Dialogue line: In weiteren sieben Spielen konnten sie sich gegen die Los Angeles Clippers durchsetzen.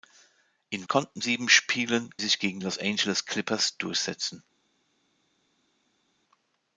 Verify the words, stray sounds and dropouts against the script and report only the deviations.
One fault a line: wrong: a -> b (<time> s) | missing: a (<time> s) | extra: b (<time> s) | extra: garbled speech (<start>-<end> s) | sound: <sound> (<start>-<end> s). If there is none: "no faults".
wrong: weiteren -> konnten (0.9 s)
missing: konnten sie (2.1 s)
missing: die (2.6 s)